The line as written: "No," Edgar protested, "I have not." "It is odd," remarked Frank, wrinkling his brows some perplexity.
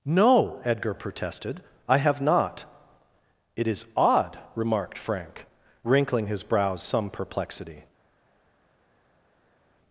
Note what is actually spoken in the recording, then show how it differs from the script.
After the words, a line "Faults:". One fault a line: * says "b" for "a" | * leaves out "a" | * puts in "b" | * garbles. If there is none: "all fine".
"No," Edgar protested, "I have not." "It is odd," remarked Frank, wrinkling his brows some perplexity.
Faults:
all fine